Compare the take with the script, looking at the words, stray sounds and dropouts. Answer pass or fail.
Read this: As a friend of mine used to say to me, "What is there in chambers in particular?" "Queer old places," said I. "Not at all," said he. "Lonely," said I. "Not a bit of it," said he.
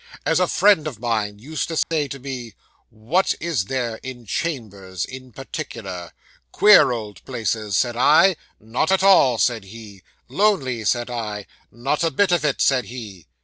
fail